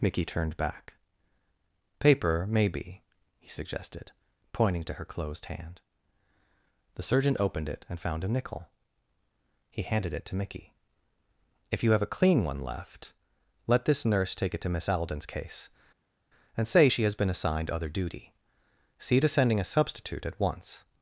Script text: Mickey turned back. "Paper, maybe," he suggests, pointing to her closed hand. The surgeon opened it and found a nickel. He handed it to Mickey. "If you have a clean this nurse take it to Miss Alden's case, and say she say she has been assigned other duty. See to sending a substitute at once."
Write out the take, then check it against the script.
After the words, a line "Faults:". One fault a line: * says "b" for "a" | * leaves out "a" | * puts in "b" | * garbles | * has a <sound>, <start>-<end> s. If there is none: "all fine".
Mickey turned back. "Paper, maybe," he suggested, pointing to her closed hand. The surgeon opened it and found a nickel. He handed it to Mickey. "If you have a clean one left, let this nurse take it to Miss Alden's case, and say she has been assigned other duty. See to sending a substitute at once."
Faults:
* says "suggested" for "suggests"
* puts in "one left let"
* leaves out "say she"